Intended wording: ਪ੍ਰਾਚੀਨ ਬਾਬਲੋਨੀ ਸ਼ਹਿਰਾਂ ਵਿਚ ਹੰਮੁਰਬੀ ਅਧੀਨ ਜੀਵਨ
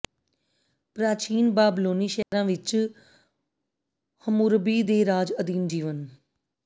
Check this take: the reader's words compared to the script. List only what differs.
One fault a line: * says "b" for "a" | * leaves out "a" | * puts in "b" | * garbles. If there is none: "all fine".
* puts in "ਦੇ ਰਾਜ"